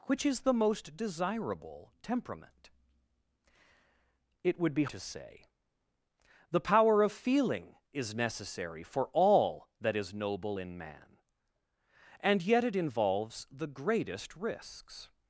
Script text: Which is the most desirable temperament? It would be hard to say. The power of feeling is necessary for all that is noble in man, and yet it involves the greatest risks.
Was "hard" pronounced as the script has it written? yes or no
no